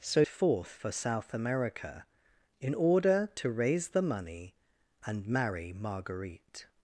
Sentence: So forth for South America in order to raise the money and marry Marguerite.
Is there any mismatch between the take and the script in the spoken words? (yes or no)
no